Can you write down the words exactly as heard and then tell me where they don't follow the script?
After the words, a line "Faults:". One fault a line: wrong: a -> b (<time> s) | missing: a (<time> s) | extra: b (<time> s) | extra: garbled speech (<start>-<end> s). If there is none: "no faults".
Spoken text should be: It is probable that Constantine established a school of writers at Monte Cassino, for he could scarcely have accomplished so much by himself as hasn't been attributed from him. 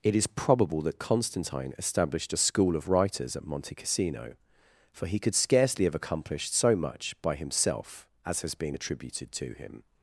It is probable that Constantine established a school of writers at Monte Cassino, for he could scarcely have accomplished so much by himself as has been attributed to him.
Faults:
wrong: hasn't -> has (8.4 s)
wrong: from -> to (9.3 s)